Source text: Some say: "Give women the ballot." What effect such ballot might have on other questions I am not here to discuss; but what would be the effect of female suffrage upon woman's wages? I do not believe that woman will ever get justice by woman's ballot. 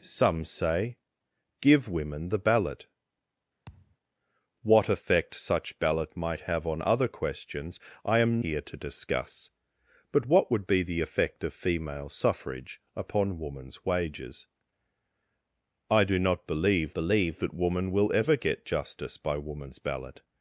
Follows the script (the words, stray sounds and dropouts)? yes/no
no